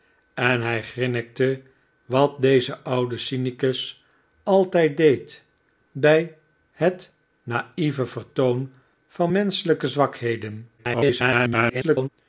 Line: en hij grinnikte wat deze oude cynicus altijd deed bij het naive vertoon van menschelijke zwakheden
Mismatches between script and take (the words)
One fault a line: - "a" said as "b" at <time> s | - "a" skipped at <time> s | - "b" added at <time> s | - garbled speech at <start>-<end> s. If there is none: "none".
- garbled speech at 10.8-12.1 s